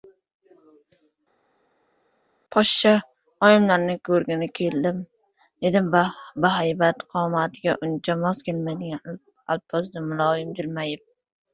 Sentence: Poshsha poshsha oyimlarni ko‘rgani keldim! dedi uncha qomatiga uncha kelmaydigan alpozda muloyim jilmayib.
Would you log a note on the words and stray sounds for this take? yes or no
yes